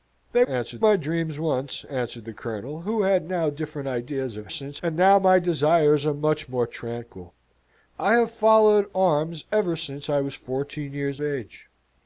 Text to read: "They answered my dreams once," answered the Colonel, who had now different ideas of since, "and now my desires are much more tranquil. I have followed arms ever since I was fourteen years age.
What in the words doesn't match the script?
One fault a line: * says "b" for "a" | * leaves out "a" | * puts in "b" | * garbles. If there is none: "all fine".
all fine